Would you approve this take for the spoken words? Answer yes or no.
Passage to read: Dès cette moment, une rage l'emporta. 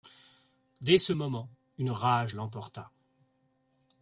no